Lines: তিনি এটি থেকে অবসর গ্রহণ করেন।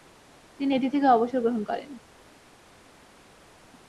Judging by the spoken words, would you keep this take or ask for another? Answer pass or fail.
pass